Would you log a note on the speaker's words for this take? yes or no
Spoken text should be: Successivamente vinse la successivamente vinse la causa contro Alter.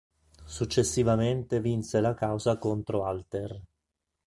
yes